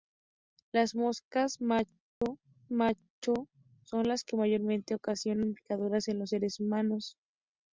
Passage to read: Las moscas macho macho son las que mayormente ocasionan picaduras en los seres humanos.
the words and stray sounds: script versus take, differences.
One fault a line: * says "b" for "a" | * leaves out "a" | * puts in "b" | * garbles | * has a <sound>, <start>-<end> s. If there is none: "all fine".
* has a dropout, 2.1-2.2 s